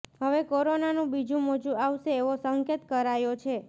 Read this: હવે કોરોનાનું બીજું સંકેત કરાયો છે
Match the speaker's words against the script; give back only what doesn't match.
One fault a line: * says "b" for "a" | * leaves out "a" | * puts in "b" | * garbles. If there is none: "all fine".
* puts in "મોજું આવશે એવો"